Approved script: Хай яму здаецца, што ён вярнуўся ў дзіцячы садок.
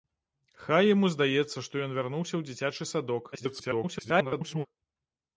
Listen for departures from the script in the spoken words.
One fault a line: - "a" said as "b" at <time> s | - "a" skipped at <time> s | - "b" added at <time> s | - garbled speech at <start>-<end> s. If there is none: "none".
- garbled speech at 3.3-4.7 s